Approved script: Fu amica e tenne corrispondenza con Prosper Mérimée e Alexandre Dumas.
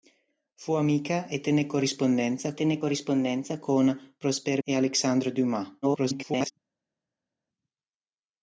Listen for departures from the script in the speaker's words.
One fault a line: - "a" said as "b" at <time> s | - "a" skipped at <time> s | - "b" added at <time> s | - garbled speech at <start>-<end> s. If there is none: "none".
- "tenne corrispondenza" added at 2.5 s
- "Mérimée" skipped at 4.6 s
- garbled speech at 5.8-6.5 s